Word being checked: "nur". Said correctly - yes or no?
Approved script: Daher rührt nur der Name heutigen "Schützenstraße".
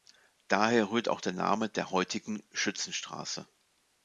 no